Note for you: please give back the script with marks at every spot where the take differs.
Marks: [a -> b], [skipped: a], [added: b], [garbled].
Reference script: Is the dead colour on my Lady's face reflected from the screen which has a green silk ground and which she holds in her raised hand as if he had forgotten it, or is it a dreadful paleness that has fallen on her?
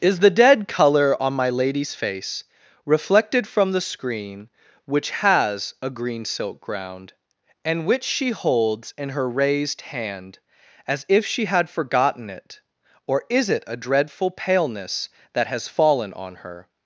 Is the dead colour on my Lady's face reflected from the screen which has a green silk ground and which she holds in her raised hand as if [he -> she] had forgotten it, or is it a dreadful paleness that has fallen on her?